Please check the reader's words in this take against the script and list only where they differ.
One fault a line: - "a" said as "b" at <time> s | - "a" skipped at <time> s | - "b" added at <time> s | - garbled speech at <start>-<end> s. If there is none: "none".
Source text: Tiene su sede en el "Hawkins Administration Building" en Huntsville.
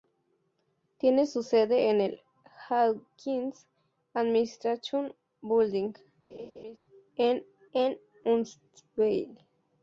- "en" added at 7.7 s